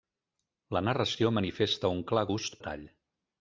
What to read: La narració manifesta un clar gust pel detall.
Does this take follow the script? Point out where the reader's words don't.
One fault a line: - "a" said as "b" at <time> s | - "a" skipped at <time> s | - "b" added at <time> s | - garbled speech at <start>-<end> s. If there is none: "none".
- "pel" skipped at 2.6 s